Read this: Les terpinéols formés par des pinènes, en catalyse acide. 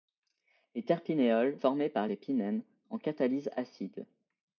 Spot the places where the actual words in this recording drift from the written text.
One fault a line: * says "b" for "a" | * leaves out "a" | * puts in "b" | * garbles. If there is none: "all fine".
all fine